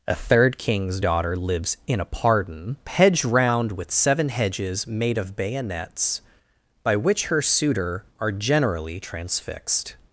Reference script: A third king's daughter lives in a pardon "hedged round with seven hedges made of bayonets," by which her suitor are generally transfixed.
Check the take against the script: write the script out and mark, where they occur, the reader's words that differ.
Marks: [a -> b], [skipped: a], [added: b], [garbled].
A third king's daughter lives in a pardon "hedged round with seven hedges made of bayonets," by which her suitor are generally transfixed.